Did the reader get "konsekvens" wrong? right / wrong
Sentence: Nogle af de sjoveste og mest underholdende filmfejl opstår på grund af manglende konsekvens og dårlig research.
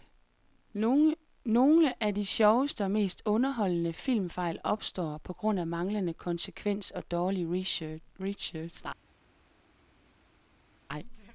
right